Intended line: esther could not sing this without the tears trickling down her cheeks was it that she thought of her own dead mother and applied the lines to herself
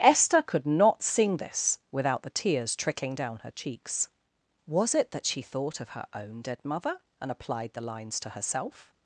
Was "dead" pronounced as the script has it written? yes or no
yes